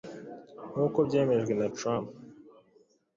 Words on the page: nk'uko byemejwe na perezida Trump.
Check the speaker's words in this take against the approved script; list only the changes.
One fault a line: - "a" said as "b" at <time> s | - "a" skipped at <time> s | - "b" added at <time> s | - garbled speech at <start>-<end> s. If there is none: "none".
- "perezida" skipped at 1.7 s